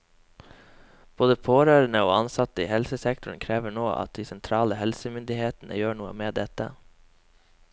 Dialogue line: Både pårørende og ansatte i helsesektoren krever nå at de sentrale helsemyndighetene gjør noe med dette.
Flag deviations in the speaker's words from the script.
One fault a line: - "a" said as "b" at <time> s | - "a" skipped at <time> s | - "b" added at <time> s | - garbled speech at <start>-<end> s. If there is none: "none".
none